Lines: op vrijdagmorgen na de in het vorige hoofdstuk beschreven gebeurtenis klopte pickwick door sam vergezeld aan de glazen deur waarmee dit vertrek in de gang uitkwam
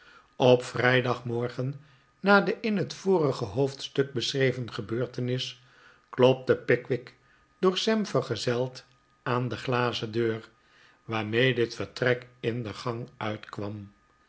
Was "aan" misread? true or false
false